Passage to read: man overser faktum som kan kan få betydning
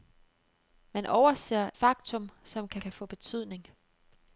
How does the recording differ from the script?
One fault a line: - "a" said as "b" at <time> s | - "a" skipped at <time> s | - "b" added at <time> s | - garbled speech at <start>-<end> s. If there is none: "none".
none